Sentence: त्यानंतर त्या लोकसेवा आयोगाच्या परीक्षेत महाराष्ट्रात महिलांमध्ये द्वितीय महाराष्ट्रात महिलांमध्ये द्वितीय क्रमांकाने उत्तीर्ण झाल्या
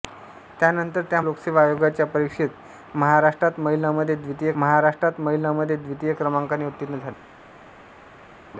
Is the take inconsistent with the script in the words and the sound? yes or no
no